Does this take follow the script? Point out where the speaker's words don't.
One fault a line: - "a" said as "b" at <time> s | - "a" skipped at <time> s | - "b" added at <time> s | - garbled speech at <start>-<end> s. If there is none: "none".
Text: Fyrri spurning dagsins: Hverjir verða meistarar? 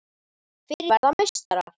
- "spurning dagsins Hverjir" skipped at 0.9 s